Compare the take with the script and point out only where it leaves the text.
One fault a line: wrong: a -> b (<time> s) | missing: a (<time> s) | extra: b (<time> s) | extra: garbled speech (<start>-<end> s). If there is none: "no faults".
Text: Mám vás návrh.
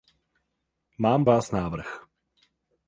no faults